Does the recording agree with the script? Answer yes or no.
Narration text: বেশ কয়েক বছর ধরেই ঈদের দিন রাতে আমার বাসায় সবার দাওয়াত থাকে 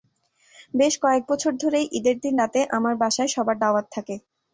yes